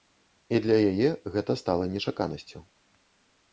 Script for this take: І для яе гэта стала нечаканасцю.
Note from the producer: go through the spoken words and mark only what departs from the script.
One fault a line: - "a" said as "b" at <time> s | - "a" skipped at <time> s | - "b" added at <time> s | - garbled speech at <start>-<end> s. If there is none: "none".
none